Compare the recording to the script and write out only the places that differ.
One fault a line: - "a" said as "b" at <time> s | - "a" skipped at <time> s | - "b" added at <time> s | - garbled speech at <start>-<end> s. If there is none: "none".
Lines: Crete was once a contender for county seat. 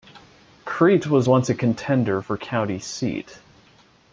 none